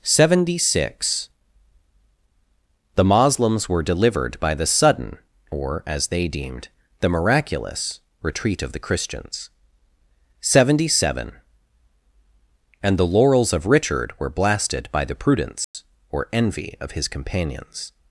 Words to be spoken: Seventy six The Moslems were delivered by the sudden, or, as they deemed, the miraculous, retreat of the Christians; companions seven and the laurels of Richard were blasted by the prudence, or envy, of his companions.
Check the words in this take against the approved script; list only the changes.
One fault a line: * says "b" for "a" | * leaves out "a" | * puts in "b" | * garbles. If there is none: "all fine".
* says "seventy" for "companions"